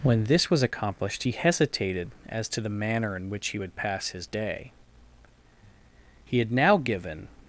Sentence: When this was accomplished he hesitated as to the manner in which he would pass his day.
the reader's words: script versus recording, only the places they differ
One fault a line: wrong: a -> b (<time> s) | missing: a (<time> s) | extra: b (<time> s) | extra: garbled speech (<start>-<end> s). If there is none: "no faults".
extra: He had now given (6.3 s)